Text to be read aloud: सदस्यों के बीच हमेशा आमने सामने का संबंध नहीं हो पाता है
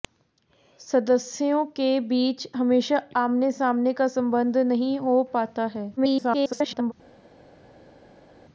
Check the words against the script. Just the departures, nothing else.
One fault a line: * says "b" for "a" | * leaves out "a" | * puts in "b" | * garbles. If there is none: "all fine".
* garbles